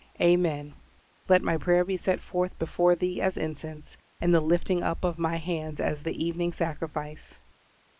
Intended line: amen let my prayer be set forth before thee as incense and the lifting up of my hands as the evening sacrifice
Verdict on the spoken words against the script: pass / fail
pass